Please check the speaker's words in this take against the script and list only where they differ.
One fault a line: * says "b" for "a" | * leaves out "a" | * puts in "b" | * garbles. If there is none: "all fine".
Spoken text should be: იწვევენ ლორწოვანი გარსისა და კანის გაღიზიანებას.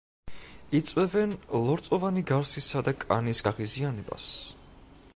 all fine